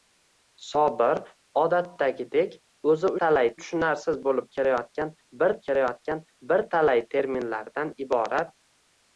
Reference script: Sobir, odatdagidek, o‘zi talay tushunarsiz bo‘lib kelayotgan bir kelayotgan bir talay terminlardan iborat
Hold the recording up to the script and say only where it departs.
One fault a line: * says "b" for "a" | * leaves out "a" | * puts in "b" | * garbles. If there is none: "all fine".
all fine